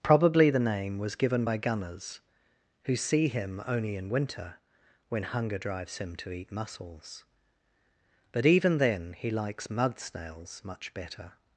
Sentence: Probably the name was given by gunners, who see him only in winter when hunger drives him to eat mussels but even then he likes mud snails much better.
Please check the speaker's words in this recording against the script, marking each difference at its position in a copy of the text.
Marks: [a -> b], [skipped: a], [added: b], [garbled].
Probably the name was given by gunners, who see him only in winter when hunger drives him to eat mussels but even then he likes mud snails much better.